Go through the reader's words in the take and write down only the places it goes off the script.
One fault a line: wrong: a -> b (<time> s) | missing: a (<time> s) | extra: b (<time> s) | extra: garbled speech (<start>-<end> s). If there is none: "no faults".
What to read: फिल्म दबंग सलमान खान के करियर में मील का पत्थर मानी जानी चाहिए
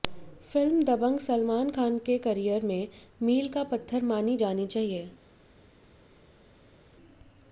no faults